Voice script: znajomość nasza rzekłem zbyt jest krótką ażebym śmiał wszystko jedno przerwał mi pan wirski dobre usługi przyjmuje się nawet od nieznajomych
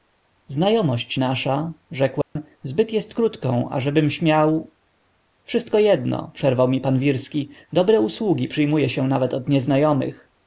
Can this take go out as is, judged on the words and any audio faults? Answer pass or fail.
fail